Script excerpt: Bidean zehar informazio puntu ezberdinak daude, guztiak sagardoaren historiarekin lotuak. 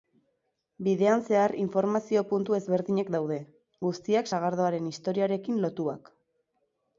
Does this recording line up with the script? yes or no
yes